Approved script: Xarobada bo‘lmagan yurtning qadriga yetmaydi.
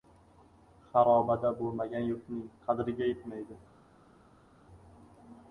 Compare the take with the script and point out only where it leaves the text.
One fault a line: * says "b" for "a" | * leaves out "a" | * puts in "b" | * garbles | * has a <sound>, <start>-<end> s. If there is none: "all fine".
all fine